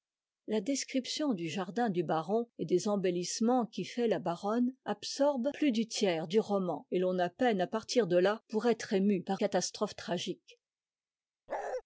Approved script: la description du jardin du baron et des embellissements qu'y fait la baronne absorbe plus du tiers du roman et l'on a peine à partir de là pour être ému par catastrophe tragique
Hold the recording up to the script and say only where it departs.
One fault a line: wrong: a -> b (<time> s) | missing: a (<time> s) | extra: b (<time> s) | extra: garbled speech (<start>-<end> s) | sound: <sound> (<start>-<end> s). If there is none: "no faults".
sound: bark (11.5-11.8 s)